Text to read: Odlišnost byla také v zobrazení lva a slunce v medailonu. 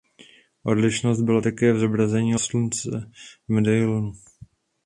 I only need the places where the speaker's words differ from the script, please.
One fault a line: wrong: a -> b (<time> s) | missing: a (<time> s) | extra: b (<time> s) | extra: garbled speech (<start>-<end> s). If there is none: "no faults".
missing: lva a (2.3 s)